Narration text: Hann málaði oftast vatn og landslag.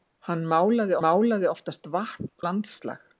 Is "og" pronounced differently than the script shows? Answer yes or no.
yes